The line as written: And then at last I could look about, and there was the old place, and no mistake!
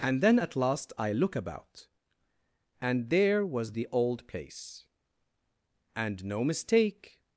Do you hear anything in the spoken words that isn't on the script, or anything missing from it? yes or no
yes